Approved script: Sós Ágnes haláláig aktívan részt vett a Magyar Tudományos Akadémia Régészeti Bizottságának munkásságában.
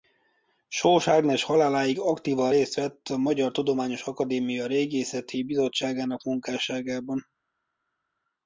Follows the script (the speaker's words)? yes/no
yes